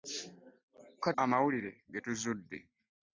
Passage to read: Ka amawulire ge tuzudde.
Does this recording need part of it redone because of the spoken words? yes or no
no